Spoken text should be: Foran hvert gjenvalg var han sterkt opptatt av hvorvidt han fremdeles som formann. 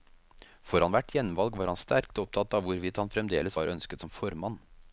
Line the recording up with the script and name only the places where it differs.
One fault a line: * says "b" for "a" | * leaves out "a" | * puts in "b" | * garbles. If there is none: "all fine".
* puts in "var ønsket"